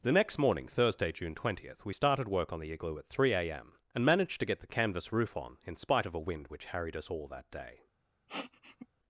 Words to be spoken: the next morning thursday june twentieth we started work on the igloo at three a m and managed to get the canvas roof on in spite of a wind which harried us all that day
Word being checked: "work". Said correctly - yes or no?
yes